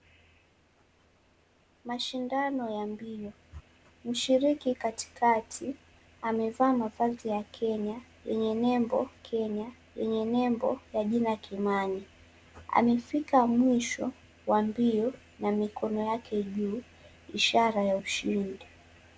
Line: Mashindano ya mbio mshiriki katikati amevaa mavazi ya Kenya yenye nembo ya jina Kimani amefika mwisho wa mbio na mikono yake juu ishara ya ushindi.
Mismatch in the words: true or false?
true